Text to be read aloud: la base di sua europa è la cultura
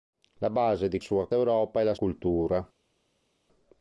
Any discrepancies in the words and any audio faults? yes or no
no